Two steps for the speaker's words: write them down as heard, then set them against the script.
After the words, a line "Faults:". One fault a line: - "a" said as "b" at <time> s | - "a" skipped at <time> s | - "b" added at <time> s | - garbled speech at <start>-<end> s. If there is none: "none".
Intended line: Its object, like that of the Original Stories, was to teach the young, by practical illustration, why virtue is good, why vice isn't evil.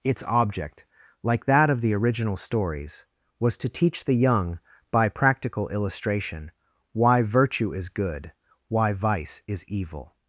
Its object, like that of the Original Stories, was to teach the young, by practical illustration, why virtue is good, why vice is evil.
Faults:
- "isn't" said as "is" at 9.5 s